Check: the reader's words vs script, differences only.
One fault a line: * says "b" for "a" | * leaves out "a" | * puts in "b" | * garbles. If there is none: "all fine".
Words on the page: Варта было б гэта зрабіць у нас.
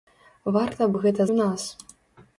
* leaves out "было"
* leaves out "зрабіць"